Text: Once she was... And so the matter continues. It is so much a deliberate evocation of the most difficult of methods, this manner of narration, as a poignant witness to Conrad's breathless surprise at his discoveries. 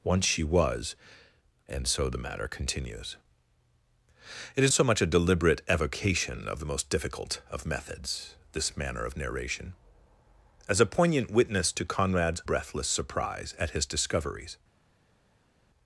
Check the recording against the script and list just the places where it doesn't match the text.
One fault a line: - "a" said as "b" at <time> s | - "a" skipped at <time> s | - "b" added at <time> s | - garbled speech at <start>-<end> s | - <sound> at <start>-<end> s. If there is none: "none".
none